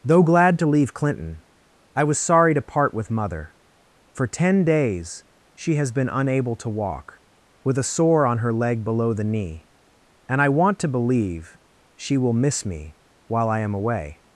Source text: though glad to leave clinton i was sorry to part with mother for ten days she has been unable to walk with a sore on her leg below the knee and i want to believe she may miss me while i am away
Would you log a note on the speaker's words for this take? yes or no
yes